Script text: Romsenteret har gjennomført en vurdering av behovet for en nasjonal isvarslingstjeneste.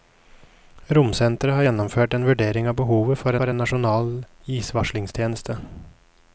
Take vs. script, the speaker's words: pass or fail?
fail